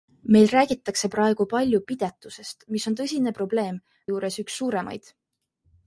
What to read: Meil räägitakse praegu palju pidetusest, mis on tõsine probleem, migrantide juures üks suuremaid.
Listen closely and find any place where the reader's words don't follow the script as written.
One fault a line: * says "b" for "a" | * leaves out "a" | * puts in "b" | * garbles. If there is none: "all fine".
* leaves out "migrantide"